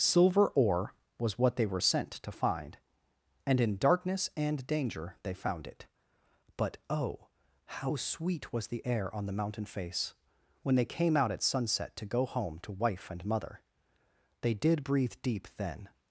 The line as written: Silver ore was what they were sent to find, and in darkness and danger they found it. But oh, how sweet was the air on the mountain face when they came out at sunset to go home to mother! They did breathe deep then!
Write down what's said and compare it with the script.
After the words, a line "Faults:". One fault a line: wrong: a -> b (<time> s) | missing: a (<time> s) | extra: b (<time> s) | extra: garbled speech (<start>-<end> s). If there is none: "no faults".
Silver ore was what they were sent to find, and in darkness and danger they found it. But oh, how sweet was the air on the mountain face when they came out at sunset to go home to wife and mother! They did breathe deep then!
Faults:
extra: wife and (12.7 s)